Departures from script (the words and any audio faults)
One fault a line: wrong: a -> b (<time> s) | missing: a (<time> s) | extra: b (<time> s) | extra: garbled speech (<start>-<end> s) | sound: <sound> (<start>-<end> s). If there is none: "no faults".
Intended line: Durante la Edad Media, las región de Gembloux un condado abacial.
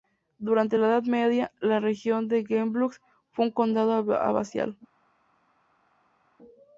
wrong: las -> la (1.6 s)
extra: fue (3.3 s)